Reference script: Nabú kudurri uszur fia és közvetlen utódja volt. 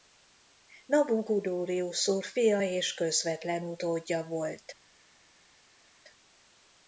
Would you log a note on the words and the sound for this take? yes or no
no